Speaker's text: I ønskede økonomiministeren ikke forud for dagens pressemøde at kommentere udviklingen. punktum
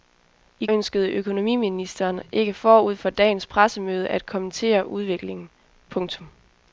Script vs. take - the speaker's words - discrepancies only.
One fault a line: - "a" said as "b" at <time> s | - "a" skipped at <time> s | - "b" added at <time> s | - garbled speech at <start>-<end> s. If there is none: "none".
none